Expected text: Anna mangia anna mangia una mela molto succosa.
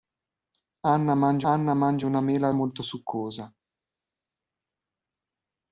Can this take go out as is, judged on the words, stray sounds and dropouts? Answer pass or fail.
pass